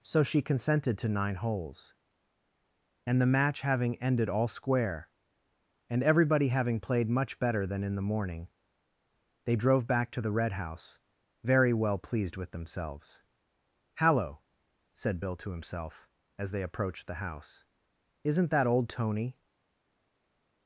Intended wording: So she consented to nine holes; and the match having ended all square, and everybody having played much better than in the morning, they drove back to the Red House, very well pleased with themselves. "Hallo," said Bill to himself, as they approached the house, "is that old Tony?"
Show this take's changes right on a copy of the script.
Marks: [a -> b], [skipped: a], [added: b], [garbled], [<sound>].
So she consented to nine holes; and the match having ended all square, and everybody having played much better than in the morning, they drove back to the Red House, very well pleased with themselves. "Hallo," said Bill to himself, as they approached the house, ["is -> isn't] that old Tony?"